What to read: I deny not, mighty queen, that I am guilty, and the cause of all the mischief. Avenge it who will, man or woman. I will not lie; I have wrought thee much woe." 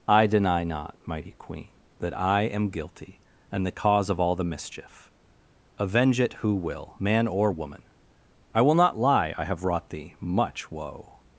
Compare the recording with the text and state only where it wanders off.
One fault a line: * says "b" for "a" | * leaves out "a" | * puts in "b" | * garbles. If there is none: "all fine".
all fine